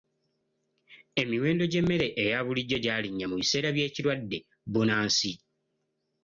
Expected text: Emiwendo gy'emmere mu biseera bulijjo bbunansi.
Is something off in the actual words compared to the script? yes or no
yes